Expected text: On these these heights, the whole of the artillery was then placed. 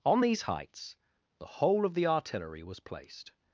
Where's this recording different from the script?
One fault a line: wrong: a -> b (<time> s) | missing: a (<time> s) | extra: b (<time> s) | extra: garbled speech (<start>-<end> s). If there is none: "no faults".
missing: these (0.4 s)
missing: then (2.8 s)